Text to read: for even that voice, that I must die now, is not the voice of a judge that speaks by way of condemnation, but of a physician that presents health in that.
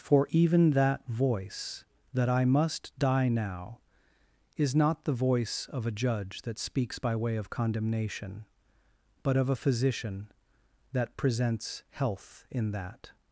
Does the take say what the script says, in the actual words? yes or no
yes